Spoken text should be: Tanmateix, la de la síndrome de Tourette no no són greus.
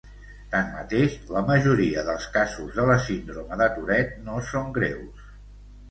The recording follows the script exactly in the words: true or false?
false